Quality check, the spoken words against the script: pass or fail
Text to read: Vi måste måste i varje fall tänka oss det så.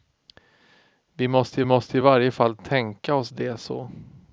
pass